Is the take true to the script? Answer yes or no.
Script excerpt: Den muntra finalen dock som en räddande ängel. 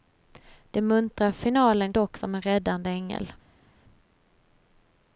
yes